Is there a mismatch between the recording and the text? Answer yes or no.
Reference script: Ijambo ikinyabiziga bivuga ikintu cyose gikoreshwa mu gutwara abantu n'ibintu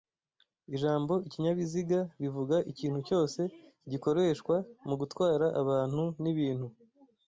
no